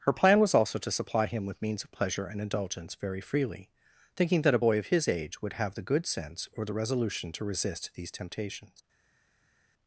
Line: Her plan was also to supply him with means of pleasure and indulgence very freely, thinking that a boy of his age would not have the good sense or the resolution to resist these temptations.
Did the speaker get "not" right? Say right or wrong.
wrong